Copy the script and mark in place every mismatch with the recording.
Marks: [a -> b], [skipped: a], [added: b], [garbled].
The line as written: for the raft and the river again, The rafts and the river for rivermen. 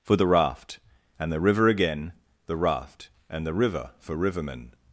for the raft and the river again, The [rafts -> raft] and the river for rivermen.